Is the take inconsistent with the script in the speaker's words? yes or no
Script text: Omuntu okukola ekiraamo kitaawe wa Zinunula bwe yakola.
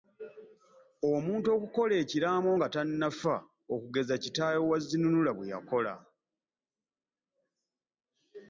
yes